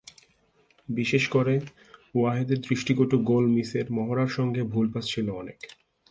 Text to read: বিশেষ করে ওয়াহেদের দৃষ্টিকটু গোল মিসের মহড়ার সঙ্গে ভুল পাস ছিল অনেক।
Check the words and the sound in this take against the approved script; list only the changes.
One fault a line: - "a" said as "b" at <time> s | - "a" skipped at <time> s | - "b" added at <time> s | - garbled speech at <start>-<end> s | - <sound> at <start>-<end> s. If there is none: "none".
none